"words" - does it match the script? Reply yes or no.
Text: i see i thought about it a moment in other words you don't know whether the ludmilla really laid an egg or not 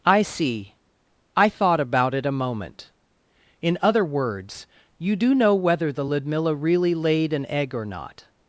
yes